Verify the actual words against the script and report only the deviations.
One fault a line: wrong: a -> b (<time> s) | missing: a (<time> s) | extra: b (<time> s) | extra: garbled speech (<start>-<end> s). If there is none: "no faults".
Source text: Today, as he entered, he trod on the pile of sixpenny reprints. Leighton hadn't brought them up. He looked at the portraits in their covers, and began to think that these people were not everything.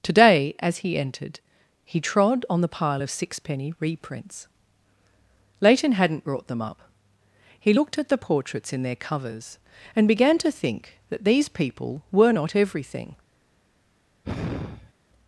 no faults